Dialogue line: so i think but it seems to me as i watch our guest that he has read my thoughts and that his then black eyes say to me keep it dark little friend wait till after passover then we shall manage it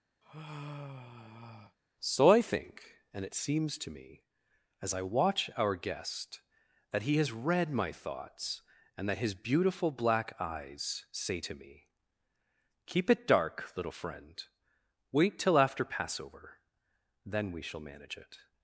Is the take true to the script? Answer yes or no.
no